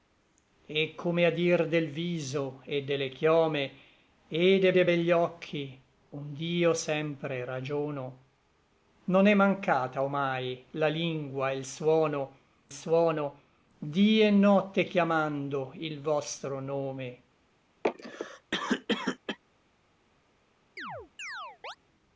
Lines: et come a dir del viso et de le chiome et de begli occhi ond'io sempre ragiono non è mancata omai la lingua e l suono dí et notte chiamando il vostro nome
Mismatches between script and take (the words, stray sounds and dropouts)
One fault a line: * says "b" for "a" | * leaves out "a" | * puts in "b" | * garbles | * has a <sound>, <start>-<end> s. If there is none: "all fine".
* puts in "de"
* puts in "suono"
* has a cough, 17.8-19.4 s
* has a chirp, 20.8-21.8 s